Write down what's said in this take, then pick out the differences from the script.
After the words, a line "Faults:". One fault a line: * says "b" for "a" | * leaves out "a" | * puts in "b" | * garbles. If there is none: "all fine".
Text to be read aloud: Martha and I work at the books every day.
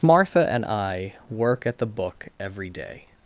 Martha and I work at the book every day.
Faults:
* says "book" for "books"